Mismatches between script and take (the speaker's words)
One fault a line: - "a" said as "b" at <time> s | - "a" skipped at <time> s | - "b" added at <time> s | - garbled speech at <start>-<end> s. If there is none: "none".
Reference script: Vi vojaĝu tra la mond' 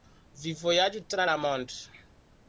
none